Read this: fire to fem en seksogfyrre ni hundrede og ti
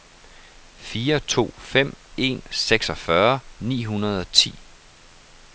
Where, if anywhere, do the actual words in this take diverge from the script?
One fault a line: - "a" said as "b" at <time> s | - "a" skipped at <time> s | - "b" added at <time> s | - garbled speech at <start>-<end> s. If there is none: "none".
none